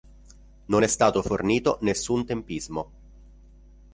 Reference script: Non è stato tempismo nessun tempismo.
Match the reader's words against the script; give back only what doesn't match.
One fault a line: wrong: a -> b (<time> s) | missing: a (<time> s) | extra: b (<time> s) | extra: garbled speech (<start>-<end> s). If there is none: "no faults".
wrong: tempismo -> fornito (1.2 s)